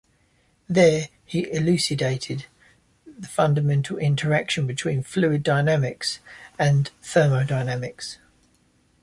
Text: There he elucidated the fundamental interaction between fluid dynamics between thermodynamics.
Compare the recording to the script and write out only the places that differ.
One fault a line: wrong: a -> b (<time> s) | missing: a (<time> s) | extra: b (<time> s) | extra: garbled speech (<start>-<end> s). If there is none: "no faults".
wrong: between -> and (6.6 s)